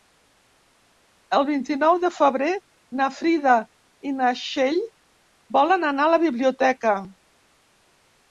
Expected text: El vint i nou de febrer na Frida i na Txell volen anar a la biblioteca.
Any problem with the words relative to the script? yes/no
no